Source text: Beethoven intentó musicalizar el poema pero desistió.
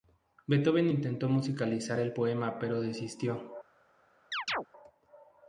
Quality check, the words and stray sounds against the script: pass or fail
fail